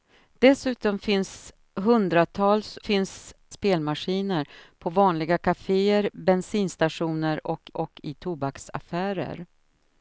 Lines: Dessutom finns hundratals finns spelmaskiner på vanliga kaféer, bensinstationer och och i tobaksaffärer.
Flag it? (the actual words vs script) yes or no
no